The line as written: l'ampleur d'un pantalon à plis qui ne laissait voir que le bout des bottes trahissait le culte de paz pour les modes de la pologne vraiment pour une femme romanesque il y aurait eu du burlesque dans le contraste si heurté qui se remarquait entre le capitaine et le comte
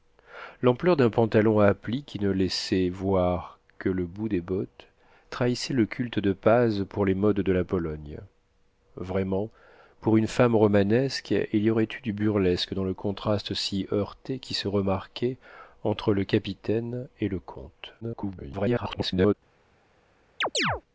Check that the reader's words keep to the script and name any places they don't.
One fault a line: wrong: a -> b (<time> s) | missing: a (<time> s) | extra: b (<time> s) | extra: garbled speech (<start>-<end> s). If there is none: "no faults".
extra: garbled speech (18.0-19.3 s)